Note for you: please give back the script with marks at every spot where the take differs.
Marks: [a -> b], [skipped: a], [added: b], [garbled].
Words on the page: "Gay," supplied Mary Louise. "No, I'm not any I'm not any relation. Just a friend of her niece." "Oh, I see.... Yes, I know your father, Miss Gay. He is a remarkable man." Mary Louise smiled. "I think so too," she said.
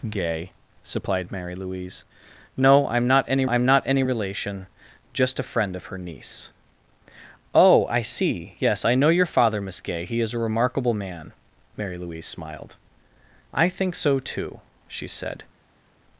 "Gay," supplied Mary Louise. "No, I'm not any I'm not any relation. Just a friend of her niece." "Oh, I see.... Yes, I know your father, Miss Gay. He is a remarkable man." Mary Louise smiled. "I think so too," she said.